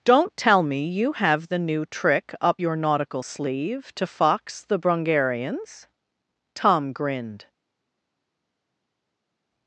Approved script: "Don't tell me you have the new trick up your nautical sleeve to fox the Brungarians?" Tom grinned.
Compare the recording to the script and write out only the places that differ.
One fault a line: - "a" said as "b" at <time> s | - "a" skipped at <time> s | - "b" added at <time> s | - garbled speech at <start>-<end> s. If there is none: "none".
none